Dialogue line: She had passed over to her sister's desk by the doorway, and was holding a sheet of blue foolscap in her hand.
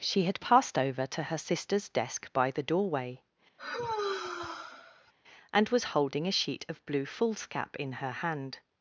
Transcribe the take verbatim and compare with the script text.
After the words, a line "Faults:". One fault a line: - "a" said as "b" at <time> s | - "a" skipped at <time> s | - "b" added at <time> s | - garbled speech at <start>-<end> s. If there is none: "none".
She had passed over to her sister's desk by the doorway, and was holding a sheet of blue foolscap in her hand.
Faults:
none